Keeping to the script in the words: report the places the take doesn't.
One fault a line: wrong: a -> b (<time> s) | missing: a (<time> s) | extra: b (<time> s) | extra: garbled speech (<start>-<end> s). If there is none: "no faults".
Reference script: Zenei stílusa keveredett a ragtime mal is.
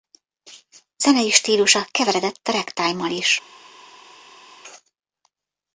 no faults